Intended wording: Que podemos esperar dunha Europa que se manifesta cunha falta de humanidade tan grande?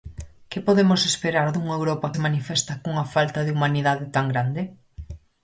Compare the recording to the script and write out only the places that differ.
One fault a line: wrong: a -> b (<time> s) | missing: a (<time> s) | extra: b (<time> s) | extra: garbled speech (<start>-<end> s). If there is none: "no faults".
missing: que (2.1 s)